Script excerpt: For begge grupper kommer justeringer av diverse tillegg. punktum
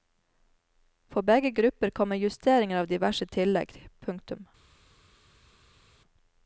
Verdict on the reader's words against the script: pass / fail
pass